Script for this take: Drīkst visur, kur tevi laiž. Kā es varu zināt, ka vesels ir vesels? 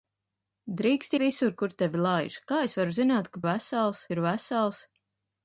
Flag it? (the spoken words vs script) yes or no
no